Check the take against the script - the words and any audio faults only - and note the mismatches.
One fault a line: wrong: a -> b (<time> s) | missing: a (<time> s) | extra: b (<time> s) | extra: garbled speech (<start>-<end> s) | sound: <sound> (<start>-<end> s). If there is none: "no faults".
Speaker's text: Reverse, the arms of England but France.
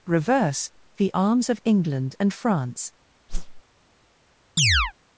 wrong: but -> and (2.2 s)
sound: whoosh (3.3-3.6 s)
sound: chirp (4.6-4.9 s)